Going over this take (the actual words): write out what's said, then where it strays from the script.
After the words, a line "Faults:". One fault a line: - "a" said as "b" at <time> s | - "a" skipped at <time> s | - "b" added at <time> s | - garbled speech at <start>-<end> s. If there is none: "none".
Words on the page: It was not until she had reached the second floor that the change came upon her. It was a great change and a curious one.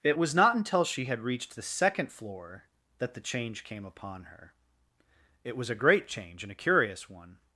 It was not until she had reached the second floor that the change came upon her. It was a great change and a curious one.
Faults:
none